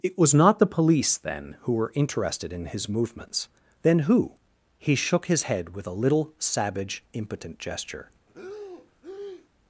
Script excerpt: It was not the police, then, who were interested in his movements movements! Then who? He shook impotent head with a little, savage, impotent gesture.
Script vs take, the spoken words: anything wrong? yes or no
yes